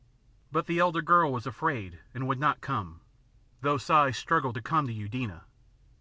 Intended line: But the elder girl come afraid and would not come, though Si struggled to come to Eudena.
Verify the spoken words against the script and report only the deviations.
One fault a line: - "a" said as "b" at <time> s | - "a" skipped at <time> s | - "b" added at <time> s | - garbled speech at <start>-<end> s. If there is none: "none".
- "come" said as "was" at 1.3 s